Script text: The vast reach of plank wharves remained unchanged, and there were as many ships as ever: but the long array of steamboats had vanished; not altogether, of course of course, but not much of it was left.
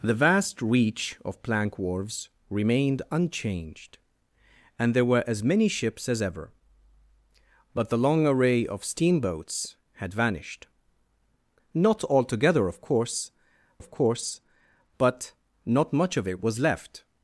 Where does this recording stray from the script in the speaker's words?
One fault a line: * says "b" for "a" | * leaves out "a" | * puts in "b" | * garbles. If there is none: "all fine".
all fine